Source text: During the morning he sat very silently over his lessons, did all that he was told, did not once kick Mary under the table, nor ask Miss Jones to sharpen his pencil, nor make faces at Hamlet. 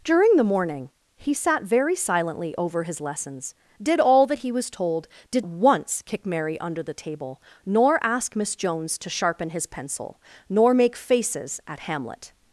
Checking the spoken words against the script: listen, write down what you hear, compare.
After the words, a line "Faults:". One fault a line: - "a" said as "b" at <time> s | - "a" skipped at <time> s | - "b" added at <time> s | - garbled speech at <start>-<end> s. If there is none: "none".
During the morning he sat very silently over his lessons, did all that he was told, did once kick Mary under the table, nor ask Miss Jones to sharpen his pencil, nor make faces at Hamlet.
Faults:
- "not" skipped at 5.5 s